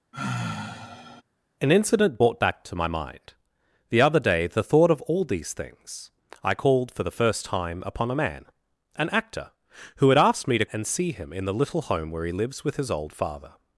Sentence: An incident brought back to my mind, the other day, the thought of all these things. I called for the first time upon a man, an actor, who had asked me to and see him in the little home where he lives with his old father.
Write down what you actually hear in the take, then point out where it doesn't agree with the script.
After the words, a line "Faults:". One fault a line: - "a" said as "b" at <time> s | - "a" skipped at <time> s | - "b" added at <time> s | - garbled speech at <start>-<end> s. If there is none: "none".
An incident brought back to my mind, the other day, the thought of all these things. I called for the first time upon a man, an actor, who had asked me to and see him in the little home where he lives with his old father.
Faults:
none